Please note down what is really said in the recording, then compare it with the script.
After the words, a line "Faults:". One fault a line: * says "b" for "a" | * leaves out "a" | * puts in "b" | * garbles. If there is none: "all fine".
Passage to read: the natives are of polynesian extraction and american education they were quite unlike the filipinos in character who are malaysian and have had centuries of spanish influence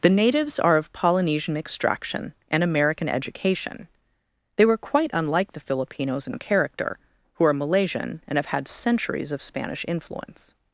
the natives are of polynesian extraction and american education they were quite unlike the filipinos in character who are malaysian and have had centuries of spanish influence
Faults:
all fine